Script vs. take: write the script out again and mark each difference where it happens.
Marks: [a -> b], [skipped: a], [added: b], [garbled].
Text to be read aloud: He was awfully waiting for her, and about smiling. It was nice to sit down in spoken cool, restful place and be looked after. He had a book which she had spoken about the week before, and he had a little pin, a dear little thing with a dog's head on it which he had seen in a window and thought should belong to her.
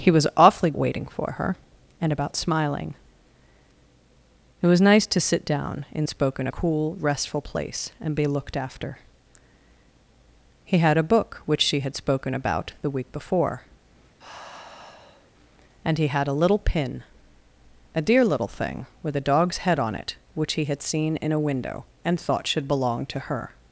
He was awfully waiting for her, and about smiling. It was nice to sit down in spoken cool, restful place and be looked after. He had a book which she had spoken about the week before, and he had a little pin, a dear little thing with a dog's head on it which he had seen in a window and thought should belong to her.